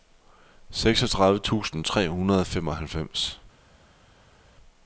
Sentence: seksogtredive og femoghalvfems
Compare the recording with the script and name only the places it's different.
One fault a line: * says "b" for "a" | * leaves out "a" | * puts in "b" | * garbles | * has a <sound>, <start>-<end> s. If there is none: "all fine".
* puts in "tusind tre hundrede"